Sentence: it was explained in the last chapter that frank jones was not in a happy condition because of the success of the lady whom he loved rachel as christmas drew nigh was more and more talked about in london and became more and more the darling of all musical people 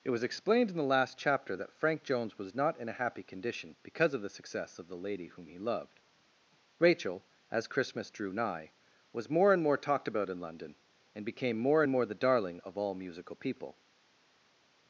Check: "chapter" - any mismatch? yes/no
no